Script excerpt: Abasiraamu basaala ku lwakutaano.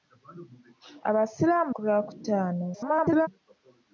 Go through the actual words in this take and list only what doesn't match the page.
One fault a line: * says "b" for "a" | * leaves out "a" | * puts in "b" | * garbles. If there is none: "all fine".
* leaves out "basaala"
* garbles